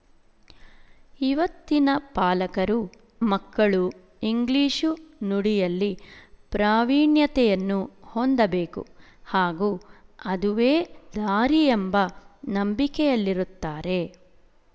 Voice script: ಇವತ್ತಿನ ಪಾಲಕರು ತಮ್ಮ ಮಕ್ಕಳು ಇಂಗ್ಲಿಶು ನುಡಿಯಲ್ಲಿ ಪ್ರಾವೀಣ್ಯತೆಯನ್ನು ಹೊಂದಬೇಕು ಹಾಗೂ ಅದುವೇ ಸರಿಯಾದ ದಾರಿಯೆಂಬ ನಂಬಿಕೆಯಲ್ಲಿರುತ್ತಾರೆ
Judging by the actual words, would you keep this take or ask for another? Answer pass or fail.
fail